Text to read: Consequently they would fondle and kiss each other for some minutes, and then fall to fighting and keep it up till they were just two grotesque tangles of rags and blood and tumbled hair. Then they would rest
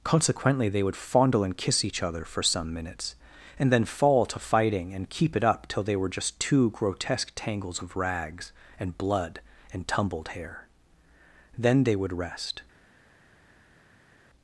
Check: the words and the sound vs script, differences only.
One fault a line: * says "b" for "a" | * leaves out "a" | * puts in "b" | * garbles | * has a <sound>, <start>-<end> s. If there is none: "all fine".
all fine